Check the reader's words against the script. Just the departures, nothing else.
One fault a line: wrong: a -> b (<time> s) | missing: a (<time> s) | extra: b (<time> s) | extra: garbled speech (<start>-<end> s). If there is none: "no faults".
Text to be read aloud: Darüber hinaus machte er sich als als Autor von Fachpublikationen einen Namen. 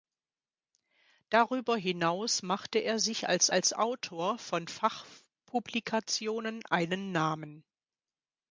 no faults